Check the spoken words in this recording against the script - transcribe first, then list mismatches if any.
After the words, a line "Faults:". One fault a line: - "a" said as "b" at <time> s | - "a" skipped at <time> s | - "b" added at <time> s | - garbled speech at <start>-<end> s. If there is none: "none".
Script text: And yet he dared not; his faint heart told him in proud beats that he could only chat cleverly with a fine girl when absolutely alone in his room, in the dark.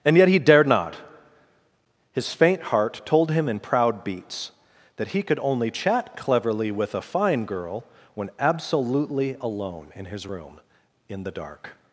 And yet he dared not; his faint heart told him in proud beats that he could only chat cleverly with a fine girl when absolutely alone in his room, in the dark.
Faults:
none